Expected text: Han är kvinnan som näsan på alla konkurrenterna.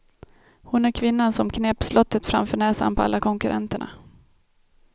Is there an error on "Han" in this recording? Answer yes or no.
yes